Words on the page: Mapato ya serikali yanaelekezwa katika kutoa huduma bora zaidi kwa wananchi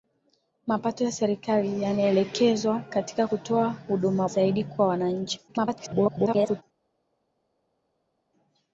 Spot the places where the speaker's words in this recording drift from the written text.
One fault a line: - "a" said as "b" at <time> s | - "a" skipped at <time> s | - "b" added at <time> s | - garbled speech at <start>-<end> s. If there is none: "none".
- "bora" skipped at 4.3 s
- garbled speech at 5.5-6.6 s